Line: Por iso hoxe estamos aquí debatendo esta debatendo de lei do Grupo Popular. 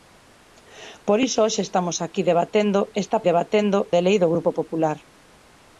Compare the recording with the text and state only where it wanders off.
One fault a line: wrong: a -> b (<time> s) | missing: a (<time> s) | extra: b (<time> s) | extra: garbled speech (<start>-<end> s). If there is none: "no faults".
no faults